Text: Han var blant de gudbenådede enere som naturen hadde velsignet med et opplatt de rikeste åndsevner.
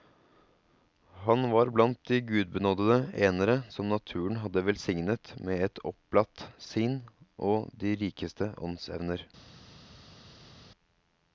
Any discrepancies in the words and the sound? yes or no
yes